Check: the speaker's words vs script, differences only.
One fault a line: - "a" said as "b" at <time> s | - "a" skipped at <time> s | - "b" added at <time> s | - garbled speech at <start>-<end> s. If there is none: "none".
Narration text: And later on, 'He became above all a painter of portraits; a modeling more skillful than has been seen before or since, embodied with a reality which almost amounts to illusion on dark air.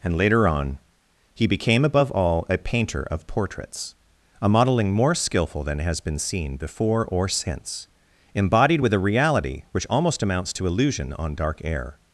none